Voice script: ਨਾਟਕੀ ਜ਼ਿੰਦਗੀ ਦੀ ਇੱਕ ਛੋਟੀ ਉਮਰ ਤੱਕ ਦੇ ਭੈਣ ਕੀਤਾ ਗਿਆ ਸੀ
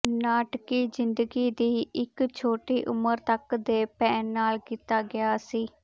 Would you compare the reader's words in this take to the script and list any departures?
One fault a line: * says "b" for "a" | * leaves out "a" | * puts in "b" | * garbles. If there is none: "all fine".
* puts in "ਨਾਲ"